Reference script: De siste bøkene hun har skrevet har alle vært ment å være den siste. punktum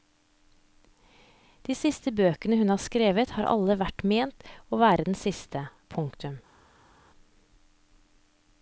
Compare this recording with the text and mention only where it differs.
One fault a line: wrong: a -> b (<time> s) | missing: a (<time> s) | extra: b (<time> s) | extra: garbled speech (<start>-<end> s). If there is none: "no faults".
no faults